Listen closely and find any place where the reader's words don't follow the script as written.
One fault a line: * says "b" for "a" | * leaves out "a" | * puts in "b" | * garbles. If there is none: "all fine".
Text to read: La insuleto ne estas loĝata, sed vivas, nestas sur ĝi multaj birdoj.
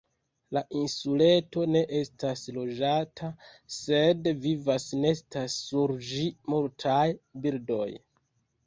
all fine